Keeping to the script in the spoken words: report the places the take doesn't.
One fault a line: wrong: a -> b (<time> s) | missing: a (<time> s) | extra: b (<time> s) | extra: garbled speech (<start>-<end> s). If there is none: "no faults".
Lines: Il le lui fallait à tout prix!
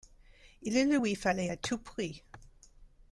no faults